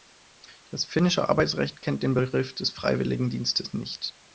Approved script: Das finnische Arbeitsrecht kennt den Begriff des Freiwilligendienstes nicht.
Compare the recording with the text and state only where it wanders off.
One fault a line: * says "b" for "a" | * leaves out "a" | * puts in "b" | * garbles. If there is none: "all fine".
all fine